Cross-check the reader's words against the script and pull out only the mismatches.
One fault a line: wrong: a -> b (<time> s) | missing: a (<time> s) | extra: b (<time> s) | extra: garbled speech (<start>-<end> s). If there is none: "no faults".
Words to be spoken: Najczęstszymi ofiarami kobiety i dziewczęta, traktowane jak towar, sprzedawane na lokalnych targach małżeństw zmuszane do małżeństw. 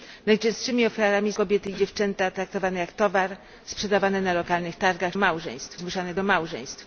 no faults